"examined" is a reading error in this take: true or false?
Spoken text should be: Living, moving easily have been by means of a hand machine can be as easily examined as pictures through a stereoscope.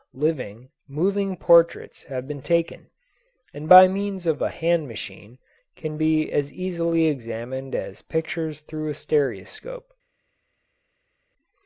false